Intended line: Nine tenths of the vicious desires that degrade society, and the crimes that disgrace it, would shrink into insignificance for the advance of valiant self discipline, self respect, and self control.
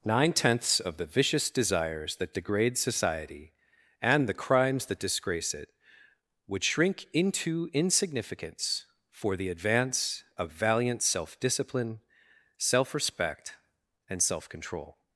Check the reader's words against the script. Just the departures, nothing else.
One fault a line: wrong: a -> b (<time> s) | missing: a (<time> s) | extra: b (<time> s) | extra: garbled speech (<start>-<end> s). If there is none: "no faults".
no faults